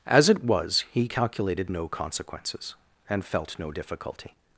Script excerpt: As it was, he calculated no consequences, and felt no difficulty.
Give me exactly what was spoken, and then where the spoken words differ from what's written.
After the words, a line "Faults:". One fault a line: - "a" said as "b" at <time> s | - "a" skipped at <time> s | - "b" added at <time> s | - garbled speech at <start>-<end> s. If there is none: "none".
As it was, he calculated no consequences, and felt no difficulty.
Faults:
none